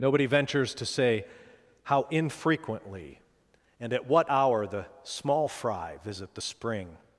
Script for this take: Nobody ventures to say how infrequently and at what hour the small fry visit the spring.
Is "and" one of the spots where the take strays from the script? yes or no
no